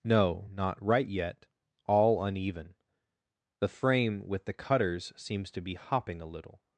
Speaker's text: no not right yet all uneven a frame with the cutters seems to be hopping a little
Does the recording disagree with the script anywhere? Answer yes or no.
yes